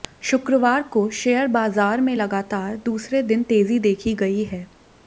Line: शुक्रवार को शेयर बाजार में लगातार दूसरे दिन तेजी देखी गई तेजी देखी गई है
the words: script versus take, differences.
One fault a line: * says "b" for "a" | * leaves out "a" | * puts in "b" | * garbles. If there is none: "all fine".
* leaves out "तेजी देखी गई"